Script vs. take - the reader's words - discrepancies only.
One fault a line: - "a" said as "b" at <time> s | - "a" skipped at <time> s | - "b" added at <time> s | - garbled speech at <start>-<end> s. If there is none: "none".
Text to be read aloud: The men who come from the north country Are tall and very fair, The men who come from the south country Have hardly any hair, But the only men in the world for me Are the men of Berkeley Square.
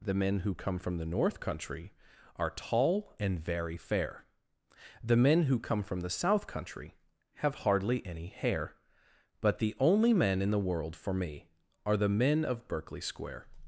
none